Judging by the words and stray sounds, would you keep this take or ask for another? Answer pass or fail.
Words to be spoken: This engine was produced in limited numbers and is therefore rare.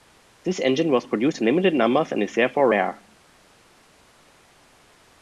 pass